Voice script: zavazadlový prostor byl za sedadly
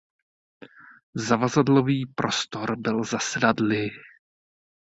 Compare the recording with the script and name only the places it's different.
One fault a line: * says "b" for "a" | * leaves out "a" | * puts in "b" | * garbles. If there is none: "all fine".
all fine